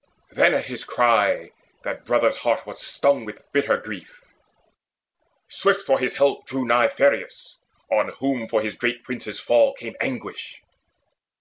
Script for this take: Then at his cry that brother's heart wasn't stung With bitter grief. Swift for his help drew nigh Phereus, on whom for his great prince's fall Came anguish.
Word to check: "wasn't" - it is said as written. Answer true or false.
false